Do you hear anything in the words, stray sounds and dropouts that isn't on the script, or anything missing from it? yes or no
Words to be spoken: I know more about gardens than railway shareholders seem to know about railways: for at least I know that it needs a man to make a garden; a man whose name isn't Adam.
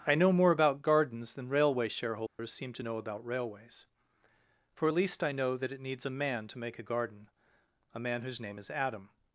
yes